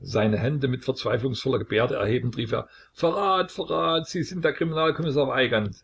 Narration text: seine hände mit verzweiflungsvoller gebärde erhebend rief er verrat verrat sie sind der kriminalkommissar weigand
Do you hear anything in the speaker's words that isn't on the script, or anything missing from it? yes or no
no